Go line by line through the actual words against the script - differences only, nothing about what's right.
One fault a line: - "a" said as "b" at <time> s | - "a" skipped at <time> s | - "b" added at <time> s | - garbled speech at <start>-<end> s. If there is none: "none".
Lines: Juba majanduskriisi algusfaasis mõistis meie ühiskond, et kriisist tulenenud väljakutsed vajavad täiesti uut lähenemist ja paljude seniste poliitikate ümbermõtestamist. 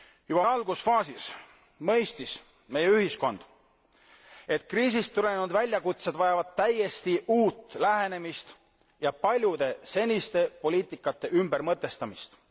- "majanduskriisi" skipped at 0.5 s